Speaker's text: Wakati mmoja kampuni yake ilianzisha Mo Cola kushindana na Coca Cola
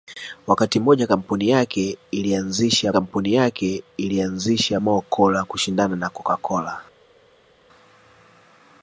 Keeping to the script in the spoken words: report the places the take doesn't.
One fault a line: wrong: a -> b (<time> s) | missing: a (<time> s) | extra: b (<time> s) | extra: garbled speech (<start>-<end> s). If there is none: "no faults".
extra: kampuni yake ilianzisha (2.9 s)